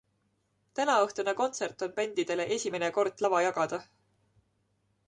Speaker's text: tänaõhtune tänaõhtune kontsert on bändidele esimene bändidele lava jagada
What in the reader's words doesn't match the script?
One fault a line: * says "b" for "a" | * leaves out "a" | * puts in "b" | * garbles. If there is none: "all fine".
* leaves out "tänaõhtune"
* says "kord" for "bändidele"